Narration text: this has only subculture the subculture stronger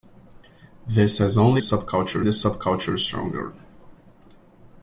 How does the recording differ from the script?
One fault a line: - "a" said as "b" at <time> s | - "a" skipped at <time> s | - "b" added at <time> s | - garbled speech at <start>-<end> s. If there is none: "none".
none